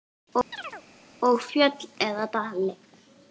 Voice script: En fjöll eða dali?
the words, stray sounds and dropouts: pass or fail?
fail